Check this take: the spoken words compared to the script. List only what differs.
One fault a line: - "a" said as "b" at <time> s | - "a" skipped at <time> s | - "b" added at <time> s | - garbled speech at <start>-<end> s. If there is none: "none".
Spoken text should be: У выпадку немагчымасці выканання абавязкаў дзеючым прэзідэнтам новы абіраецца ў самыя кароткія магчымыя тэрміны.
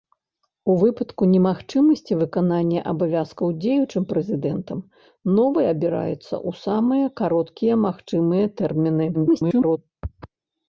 - garbled speech at 9.1-9.8 s